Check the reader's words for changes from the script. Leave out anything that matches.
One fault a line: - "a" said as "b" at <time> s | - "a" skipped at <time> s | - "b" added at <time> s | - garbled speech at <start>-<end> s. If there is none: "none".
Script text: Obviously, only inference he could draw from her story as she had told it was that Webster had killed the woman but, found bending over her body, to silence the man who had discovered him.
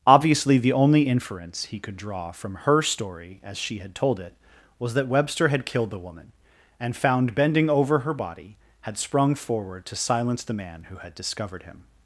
- "the" added at 0.6 s
- "but" said as "and" at 6.8 s
- "had sprung forward" added at 8.8 s